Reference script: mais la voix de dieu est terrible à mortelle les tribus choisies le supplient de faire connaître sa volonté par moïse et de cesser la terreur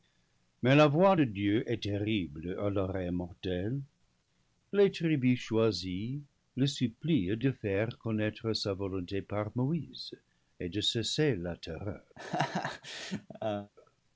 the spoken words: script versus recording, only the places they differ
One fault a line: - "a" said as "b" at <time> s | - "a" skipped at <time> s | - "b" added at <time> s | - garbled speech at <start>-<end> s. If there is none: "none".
- "l'oreille" added at 2.7 s